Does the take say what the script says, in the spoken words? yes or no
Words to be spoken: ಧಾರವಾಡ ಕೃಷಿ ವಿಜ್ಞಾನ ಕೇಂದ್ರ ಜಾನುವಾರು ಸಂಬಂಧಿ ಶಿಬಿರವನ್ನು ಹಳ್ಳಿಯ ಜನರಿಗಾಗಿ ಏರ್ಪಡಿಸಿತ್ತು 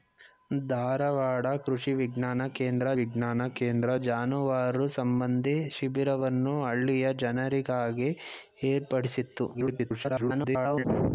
no